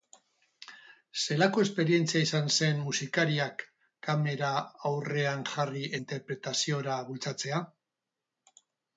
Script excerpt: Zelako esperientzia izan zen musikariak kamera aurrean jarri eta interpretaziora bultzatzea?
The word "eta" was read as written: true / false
false